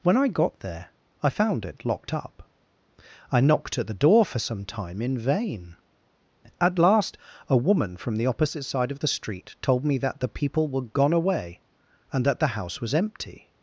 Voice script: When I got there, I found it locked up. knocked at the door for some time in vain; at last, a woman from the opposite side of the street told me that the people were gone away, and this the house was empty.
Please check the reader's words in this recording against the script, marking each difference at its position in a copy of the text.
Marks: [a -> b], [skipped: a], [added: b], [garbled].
When I got there, I found it locked up. [added: I] knocked at the door for some time in vain; at last, a woman from the opposite side of the street told me that the people were gone away, and [this -> that] the house was empty.